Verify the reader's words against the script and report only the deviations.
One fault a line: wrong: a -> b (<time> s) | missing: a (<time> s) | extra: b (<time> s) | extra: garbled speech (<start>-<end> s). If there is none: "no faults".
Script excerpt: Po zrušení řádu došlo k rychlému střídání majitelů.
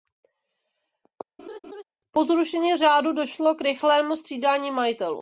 no faults